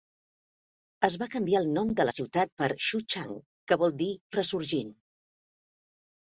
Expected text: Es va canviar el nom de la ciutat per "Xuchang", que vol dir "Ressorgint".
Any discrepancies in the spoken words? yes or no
no